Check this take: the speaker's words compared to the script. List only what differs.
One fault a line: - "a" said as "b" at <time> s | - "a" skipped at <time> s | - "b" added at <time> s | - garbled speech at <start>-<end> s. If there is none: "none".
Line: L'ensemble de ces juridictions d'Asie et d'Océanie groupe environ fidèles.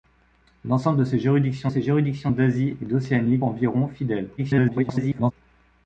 - "ces juridictions" added at 1.7 s
- "groupe" skipped at 3.4 s
- garbled speech at 4.4-5.3 s